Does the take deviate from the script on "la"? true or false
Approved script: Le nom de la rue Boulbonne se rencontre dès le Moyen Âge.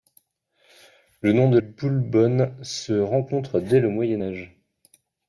true